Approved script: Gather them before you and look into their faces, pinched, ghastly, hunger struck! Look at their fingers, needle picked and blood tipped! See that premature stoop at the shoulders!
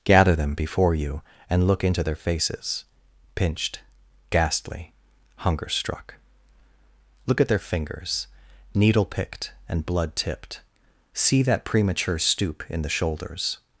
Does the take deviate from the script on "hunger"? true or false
false